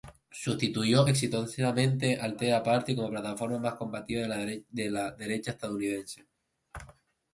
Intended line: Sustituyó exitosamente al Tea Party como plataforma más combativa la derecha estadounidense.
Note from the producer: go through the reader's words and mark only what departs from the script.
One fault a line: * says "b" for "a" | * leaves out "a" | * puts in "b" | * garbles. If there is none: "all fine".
* puts in "de"